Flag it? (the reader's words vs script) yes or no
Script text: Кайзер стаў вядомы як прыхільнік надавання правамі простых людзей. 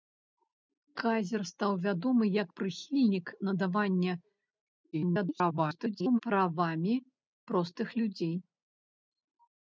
yes